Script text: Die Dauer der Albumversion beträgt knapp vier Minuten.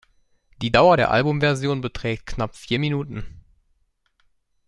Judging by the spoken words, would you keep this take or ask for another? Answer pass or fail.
pass